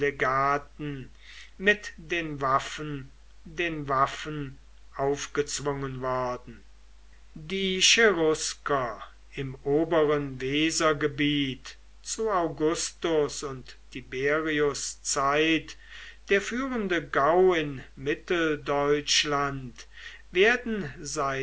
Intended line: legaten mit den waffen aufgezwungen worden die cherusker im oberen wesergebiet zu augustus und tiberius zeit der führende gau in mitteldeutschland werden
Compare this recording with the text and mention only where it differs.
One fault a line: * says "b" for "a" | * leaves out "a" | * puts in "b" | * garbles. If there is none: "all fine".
* puts in "den waffen"